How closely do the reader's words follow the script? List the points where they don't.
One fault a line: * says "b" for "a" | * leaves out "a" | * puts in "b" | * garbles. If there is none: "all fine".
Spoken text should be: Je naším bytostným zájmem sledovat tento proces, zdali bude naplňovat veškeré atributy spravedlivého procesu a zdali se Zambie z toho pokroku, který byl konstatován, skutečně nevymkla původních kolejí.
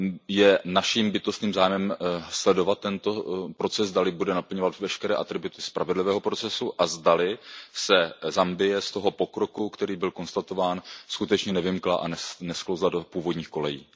* puts in "a nesklouzla do"